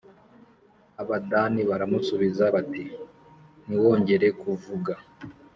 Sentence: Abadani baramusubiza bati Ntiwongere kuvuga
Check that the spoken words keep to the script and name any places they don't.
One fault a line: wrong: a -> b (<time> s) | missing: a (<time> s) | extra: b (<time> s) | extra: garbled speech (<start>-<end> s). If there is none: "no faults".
no faults